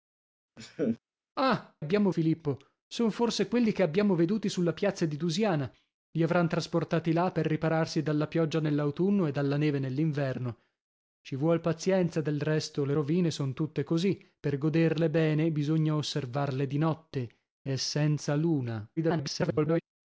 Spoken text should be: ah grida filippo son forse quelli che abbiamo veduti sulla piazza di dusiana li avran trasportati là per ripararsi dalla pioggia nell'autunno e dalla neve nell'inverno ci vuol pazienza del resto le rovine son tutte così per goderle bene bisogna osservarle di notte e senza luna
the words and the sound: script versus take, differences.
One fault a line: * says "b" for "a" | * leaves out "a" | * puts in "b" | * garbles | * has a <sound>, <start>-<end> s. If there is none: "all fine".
* has a laugh, 0.6-1.0 s
* says "abbiamo" for "grida"
* garbles